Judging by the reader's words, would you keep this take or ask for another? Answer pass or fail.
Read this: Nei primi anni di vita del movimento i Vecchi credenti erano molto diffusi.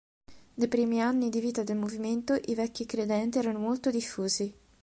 pass